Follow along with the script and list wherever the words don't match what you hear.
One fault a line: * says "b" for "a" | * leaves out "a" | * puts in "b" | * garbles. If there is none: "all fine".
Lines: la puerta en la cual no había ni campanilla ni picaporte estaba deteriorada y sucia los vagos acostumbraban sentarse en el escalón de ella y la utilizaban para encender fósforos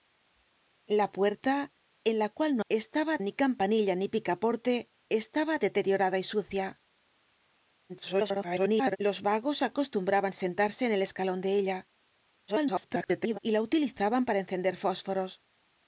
* says "estaba" for "había"
* garbles
* garbles